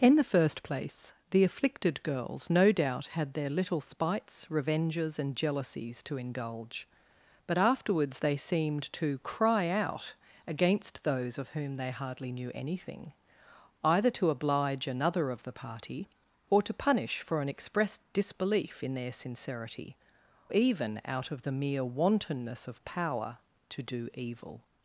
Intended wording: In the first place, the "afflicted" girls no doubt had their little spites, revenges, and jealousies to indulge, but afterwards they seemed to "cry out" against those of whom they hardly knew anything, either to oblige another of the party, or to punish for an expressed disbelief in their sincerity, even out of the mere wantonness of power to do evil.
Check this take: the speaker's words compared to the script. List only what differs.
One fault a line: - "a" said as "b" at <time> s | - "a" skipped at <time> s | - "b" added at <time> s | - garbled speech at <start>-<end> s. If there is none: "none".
none